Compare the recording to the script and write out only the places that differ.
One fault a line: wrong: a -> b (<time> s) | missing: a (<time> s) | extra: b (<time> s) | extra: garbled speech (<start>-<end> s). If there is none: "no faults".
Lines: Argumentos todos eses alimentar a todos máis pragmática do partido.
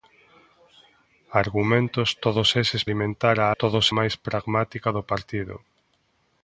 no faults